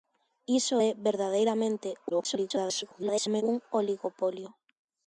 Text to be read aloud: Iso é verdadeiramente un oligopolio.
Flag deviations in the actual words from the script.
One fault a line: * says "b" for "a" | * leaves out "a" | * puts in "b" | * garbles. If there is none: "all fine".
* garbles